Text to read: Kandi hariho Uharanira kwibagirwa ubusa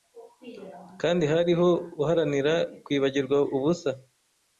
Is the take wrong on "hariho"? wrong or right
right